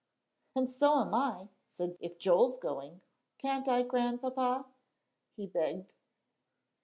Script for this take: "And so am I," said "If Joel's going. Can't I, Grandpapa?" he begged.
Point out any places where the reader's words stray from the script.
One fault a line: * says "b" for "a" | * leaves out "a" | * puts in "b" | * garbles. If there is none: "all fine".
all fine